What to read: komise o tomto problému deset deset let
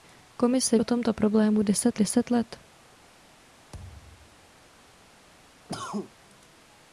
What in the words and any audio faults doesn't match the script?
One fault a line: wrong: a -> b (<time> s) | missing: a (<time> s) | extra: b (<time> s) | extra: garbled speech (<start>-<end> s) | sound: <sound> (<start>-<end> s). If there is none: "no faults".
sound: thud (3.7-4.5 s)
sound: cough (5.7-6.1 s)